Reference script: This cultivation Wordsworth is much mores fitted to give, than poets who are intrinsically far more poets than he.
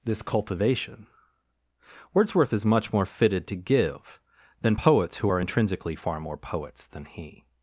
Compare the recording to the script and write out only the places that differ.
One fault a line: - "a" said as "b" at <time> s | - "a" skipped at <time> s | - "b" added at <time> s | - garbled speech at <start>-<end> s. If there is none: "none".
- "mores" said as "more" at 2.9 s